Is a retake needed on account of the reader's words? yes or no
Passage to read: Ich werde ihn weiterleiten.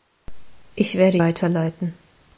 yes